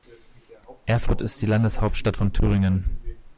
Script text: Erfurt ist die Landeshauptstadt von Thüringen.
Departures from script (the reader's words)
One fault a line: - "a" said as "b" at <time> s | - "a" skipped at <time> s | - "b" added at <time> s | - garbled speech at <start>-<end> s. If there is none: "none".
none